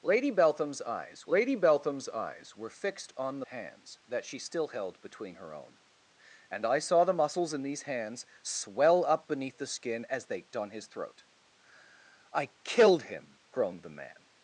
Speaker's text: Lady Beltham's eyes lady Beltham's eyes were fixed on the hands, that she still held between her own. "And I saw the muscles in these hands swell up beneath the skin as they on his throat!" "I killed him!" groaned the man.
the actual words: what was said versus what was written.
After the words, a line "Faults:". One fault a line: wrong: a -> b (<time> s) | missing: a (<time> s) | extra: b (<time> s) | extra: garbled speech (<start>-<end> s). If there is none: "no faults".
Lady Beltham's eyes lady Beltham's eyes were fixed on the hands, that she still held between her own. "And I saw the muscles in these hands swell up beneath the skin as they on his throat!" "I killed him!" groaned the man.
Faults:
no faults